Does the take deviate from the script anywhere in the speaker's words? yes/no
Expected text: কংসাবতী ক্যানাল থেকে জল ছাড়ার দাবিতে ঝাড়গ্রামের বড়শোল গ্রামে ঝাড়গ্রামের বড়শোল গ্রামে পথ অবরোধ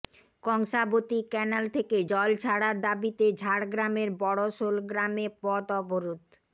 yes